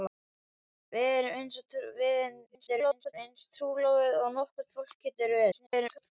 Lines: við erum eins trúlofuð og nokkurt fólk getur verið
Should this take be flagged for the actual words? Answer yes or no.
yes